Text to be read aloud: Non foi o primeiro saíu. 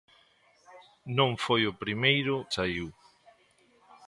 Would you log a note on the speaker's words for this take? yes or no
no